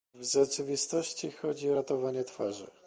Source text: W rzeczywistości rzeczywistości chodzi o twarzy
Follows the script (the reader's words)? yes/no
no